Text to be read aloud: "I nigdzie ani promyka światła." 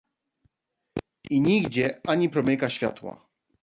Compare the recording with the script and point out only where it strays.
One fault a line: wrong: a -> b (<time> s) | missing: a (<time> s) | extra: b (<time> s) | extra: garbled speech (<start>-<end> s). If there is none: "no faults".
no faults